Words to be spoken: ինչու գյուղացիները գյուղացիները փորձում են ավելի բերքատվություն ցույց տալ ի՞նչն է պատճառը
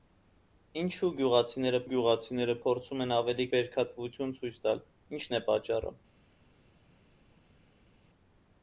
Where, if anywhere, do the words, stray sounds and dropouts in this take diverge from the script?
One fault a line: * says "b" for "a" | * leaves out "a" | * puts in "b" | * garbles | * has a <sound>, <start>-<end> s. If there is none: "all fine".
all fine